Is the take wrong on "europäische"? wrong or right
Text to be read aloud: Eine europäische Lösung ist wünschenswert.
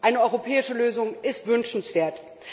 right